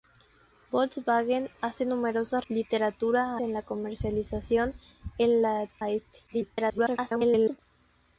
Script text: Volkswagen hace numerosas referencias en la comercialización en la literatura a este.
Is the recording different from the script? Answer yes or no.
yes